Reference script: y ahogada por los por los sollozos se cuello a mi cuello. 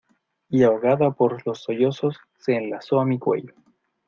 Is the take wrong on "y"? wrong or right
right